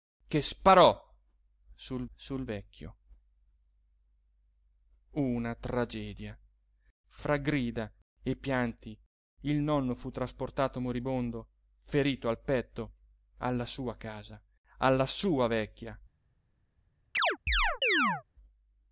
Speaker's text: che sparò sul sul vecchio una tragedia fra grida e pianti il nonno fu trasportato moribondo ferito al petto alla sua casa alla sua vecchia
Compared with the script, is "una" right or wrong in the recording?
right